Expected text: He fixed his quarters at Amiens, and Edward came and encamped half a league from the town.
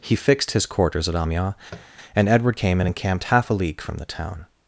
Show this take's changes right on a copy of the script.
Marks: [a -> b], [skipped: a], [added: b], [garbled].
He fixed his quarters at Amiens, and Edward came and encamped half a league from the town.